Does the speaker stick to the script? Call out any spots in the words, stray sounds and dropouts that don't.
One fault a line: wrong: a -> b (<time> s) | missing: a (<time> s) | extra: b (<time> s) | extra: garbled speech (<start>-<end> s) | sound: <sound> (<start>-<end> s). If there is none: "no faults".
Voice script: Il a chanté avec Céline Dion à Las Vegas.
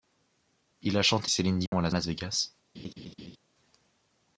missing: avec (1.3 s)
sound: dropout (1.7-1.7 s)
extra: Las (1.9 s)
sound: laugh (2.7-3.4 s)